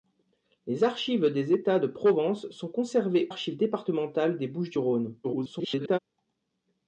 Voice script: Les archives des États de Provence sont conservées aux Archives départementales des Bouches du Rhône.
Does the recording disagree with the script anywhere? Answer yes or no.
yes